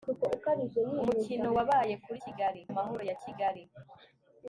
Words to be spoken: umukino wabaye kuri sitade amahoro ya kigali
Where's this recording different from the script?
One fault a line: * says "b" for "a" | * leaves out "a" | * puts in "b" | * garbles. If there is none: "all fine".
* says "kigali" for "sitade"